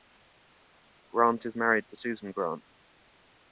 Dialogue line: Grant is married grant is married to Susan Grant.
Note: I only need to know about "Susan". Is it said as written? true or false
true